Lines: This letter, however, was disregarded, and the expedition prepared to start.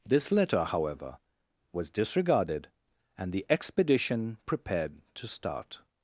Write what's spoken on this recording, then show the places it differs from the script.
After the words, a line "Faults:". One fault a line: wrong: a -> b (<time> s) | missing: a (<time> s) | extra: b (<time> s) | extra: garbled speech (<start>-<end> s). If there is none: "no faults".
This letter, however, was disregarded, and the expedition prepared to start.
Faults:
no faults